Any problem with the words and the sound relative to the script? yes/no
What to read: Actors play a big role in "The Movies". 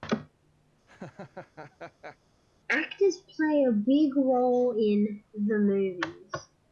yes